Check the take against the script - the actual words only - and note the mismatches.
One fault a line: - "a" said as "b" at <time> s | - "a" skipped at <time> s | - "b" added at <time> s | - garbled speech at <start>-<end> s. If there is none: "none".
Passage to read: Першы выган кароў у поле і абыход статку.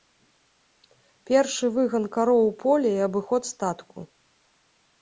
none